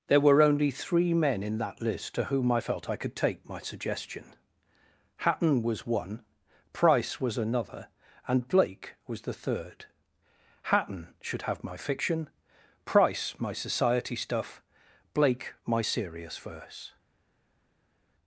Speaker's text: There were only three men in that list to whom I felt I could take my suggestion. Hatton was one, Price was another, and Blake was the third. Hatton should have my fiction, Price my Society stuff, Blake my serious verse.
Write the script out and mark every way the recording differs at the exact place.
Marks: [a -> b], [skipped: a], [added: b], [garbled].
There were only three men in that list to whom I felt I could take my suggestion. Hatton was one, Price was another, and Blake was the third. Hatton should have my fiction, Price my Society stuff, Blake my serious verse.